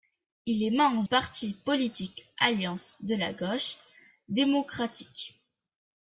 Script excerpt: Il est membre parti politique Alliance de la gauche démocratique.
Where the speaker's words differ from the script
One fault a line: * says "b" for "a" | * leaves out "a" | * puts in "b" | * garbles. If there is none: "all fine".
all fine